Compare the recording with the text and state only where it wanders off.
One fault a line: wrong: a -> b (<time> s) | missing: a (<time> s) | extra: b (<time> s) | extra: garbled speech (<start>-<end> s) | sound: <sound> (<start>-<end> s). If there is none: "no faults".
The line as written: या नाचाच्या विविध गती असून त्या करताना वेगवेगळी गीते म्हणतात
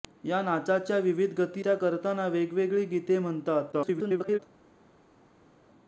missing: असून (1.6 s)
extra: garbled speech (3.7-4.4 s)